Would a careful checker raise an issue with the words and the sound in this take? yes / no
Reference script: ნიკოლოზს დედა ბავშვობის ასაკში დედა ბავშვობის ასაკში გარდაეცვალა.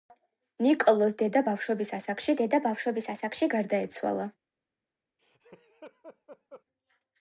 yes